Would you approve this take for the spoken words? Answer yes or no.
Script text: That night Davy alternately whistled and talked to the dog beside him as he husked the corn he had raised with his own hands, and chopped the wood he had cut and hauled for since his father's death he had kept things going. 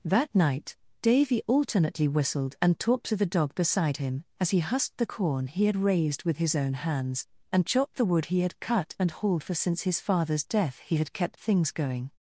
yes